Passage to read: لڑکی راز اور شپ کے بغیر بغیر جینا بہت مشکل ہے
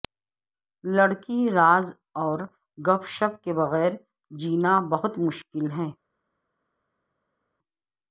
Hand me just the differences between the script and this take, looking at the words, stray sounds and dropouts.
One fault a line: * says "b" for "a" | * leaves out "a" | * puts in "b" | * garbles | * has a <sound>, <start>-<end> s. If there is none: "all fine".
* puts in "گپ"
* leaves out "بغیر"